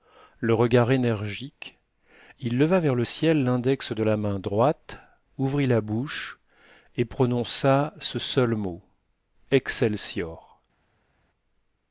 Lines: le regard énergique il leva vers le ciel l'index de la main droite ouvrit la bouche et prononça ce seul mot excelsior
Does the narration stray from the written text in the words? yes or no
no